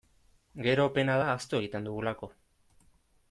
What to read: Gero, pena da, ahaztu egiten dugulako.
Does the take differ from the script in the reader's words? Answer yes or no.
no